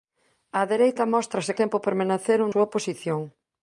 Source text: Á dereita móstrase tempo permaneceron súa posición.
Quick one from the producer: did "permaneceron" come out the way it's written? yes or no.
yes